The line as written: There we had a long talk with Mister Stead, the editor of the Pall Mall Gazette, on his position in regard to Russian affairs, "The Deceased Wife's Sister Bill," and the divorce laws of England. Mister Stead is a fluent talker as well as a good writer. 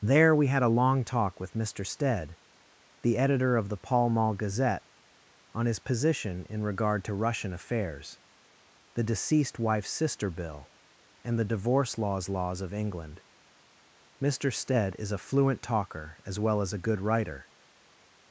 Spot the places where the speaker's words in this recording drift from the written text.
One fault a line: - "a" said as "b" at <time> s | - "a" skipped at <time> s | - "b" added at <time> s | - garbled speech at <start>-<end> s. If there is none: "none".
- "laws" added at 12.3 s